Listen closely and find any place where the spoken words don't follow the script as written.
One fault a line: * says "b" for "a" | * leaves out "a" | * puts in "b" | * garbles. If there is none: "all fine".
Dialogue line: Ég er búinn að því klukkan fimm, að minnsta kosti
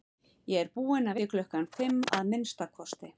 all fine